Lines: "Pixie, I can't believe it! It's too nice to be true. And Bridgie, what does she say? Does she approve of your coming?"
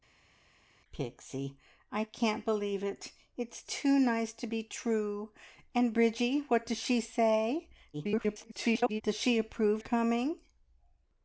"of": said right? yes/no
no